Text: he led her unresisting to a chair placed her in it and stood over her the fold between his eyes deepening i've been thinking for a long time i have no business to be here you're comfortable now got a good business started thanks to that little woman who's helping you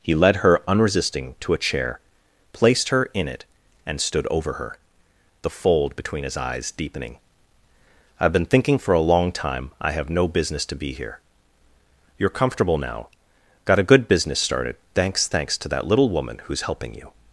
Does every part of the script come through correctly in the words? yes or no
no